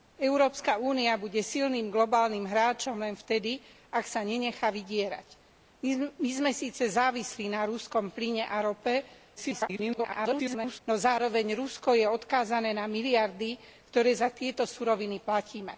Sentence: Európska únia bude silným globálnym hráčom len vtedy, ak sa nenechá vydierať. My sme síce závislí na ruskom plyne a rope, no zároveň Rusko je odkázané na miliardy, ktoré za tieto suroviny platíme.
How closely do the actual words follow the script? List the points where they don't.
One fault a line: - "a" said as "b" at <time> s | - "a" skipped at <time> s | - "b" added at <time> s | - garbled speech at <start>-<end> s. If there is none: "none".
- garbled speech at 9.4-10.8 s